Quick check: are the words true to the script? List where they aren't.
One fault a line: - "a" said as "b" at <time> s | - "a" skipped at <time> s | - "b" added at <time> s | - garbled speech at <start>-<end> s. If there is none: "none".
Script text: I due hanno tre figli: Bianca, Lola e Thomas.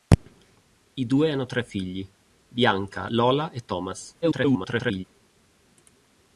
- garbled speech at 4.2-5.0 s